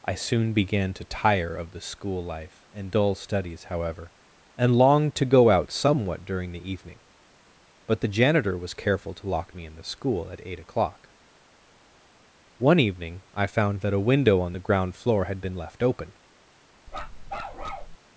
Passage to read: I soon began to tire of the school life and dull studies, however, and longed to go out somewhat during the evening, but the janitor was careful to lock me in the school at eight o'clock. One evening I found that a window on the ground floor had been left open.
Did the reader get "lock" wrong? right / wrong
right